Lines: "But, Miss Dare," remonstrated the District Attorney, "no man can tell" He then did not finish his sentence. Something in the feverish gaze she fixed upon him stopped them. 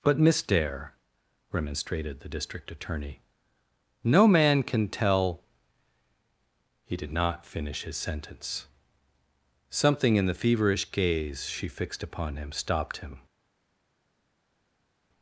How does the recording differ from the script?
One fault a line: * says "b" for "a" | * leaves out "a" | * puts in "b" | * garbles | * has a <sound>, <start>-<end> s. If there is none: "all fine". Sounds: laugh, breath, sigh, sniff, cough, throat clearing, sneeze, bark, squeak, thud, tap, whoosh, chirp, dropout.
* leaves out "then"
* says "him" for "them"